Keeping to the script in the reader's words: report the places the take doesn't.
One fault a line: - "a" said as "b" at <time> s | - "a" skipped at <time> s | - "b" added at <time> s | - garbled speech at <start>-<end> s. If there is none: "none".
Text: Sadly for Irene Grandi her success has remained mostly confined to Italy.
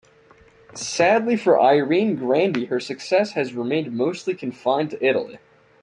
none